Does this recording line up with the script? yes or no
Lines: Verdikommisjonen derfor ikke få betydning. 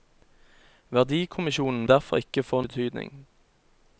yes